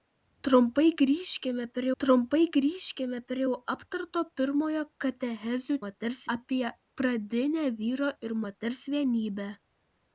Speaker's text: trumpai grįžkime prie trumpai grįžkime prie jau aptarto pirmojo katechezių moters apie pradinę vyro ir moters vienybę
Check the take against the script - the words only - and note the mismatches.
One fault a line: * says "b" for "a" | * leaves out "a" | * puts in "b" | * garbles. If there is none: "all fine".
all fine